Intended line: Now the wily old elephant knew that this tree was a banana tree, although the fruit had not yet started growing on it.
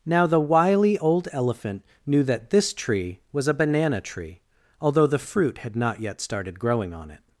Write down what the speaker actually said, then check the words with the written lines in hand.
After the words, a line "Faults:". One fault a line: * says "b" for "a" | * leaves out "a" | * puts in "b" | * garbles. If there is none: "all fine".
Now the wily old elephant knew that this tree was a banana tree, although the fruit had not yet started growing on it.
Faults:
all fine